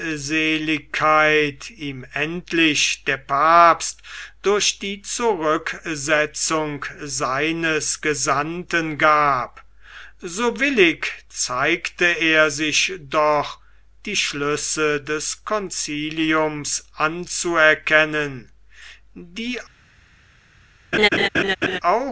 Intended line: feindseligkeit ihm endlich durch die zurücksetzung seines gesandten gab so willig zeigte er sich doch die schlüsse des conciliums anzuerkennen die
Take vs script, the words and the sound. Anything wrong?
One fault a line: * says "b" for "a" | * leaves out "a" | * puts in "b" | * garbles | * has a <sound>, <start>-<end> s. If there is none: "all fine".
* puts in "der papst"
* has a laugh, 20.9-21.8 s